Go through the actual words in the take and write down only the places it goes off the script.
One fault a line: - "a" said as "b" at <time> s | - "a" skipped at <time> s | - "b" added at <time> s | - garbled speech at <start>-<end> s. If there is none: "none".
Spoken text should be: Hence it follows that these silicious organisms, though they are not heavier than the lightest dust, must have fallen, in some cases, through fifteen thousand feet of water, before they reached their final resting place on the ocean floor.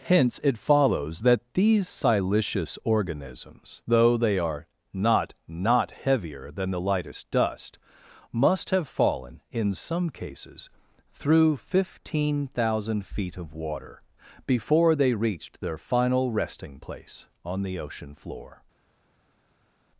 - "not" added at 5.5 s